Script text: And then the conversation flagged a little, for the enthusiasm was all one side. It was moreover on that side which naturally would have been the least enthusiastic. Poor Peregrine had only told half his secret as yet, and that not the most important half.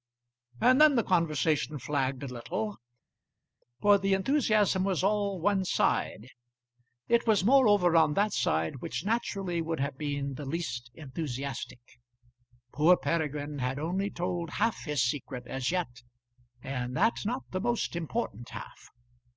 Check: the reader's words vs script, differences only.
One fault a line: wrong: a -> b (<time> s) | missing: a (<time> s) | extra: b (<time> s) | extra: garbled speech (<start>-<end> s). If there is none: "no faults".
no faults